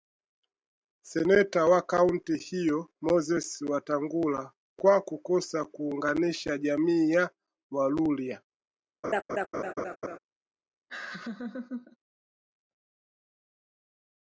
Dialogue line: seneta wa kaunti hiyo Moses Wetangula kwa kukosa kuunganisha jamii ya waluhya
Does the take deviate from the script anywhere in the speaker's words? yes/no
no